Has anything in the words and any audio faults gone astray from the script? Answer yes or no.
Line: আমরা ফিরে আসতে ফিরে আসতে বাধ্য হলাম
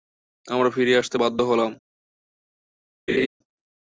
yes